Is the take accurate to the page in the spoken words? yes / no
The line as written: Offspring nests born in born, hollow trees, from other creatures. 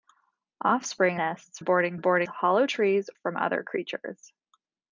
yes